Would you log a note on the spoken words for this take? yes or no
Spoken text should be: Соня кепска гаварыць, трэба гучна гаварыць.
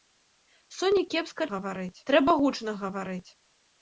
no